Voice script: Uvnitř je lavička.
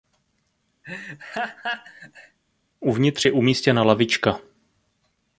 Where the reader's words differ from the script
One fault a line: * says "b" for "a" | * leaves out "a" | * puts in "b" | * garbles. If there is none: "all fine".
* puts in "umístěna"